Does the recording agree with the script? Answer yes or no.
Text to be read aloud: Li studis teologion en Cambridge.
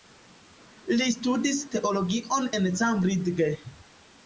yes